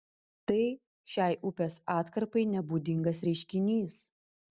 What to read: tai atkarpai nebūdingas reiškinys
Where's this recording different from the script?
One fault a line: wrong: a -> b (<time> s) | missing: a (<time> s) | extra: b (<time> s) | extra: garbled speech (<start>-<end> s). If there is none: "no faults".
extra: šiai upės (1.1 s)